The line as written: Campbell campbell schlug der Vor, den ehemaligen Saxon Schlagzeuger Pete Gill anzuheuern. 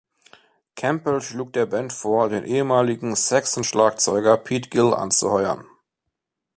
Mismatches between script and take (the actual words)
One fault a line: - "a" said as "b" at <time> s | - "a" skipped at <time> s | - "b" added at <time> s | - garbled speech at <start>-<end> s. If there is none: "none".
- "campbell" skipped at 1.2 s
- "Band" added at 1.7 s